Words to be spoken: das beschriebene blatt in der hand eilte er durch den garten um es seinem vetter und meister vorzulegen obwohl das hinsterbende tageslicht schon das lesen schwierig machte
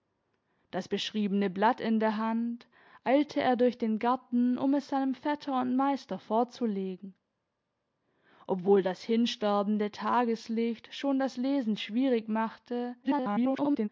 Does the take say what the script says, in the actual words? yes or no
no